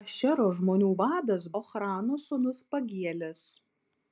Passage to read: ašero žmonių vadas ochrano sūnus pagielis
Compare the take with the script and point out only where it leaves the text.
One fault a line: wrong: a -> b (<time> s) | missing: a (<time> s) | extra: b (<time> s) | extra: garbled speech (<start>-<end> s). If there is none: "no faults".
no faults